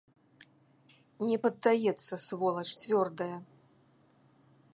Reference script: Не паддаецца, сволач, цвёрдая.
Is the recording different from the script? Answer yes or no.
no